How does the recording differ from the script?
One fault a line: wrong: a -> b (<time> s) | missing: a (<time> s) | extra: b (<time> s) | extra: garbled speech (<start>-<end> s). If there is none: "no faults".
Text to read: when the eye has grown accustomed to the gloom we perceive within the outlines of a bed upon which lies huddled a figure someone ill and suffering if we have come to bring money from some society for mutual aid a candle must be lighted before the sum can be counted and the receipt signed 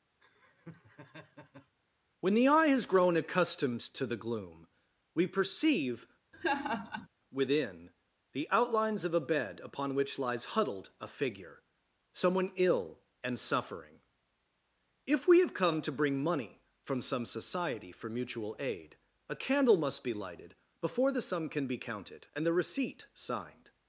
no faults